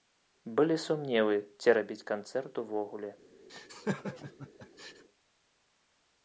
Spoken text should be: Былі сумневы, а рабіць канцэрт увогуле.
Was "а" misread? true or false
true